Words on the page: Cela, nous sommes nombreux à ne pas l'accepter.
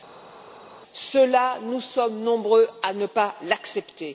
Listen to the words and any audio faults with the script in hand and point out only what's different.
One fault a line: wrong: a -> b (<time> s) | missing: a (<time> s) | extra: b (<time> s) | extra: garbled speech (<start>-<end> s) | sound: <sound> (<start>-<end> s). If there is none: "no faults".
no faults